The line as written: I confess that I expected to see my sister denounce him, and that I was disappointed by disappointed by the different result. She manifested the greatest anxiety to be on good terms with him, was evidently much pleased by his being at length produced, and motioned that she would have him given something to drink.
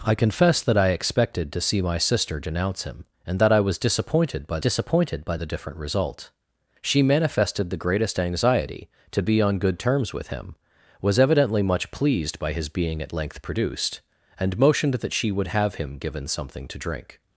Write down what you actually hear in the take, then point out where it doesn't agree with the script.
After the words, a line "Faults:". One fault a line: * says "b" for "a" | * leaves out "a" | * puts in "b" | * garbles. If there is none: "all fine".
I confess that I expected to see my sister denounce him, and that I was disappointed by disappointed by the different result. She manifested the greatest anxiety to be on good terms with him, was evidently much pleased by his being at length produced, and motioned that she would have him given something to drink.
Faults:
all fine